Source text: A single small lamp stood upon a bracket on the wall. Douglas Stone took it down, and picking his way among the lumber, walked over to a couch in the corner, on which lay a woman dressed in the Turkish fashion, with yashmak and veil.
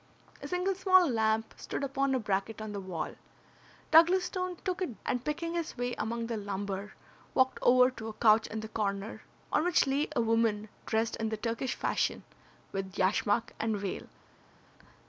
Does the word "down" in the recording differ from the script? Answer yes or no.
yes